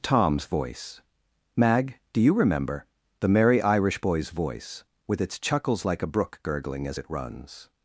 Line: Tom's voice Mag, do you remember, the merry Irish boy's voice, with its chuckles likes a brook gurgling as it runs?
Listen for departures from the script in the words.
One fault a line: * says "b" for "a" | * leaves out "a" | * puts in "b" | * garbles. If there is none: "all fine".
* says "like" for "likes"